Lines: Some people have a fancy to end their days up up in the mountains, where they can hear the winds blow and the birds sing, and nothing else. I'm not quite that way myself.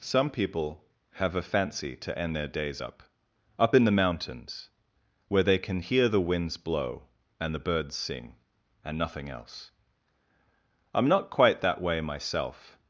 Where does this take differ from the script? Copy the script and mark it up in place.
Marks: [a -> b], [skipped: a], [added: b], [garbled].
Some people have a fancy to end their days up up in the mountains, where they can hear the winds blow and the birds sing, and nothing else. I'm not quite that way myself.